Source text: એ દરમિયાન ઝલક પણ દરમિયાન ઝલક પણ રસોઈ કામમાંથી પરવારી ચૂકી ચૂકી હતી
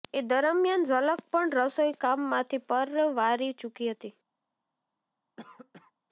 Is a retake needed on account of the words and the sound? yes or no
yes